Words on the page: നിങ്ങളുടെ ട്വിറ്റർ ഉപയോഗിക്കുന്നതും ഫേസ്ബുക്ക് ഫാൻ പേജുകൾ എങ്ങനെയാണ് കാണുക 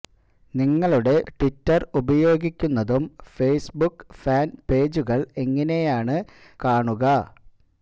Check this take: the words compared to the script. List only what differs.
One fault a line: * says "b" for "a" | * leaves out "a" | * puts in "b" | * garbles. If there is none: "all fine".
all fine